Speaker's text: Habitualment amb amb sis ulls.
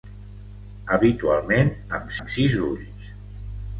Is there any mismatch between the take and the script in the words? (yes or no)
no